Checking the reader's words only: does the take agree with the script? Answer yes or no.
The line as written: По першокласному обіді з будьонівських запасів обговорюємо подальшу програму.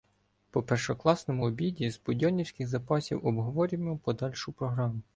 yes